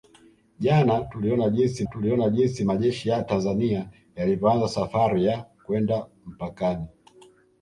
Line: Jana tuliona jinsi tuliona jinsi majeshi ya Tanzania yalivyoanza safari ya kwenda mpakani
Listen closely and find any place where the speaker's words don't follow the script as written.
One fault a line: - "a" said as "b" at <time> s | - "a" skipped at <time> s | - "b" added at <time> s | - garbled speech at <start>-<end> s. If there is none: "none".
none